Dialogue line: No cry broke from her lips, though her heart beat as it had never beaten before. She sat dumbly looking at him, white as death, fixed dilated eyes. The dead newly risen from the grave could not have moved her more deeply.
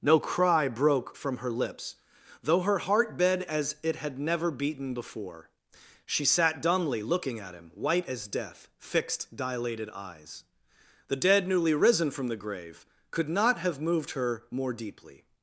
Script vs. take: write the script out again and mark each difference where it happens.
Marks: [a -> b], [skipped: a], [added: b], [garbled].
No cry broke from her lips, though her heart beat as it had never beaten before. She sat dumbly looking at him, white as death, fixed dilated eyes. The dead newly risen from the grave could not have moved her more deeply.